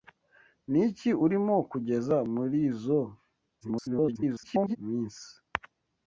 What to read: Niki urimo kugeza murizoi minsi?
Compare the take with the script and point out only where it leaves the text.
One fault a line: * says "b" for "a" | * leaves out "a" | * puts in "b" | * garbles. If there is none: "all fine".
* garbles